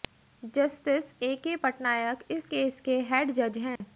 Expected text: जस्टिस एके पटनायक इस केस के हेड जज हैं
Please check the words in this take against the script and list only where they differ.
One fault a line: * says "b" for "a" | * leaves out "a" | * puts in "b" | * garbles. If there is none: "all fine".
all fine